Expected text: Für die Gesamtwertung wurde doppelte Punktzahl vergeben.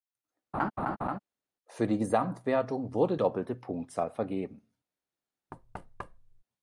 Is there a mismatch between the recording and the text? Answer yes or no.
no